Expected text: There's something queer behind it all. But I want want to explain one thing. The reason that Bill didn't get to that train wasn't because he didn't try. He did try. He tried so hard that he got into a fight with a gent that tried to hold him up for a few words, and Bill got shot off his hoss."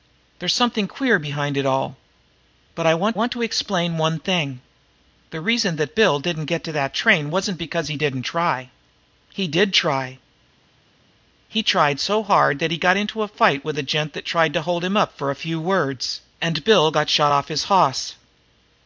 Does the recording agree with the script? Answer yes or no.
yes